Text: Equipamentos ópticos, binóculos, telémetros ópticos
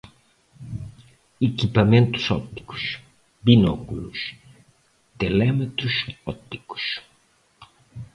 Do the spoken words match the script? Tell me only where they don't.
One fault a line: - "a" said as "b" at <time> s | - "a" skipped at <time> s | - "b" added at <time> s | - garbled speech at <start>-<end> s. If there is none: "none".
none